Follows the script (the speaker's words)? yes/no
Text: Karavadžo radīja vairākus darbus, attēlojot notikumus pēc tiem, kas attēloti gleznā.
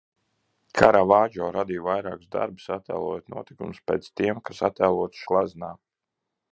yes